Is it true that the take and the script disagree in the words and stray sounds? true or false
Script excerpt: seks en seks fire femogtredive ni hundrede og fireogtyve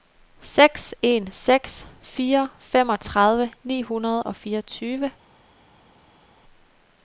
false